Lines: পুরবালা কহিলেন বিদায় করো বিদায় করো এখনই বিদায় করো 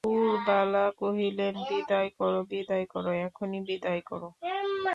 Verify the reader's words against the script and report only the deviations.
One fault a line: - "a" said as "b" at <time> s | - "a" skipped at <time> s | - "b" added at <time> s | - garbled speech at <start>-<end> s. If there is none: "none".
none